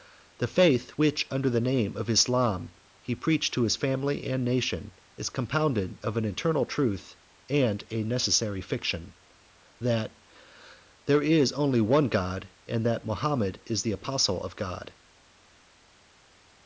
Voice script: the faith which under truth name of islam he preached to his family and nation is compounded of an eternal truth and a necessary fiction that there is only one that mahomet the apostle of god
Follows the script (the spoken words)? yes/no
no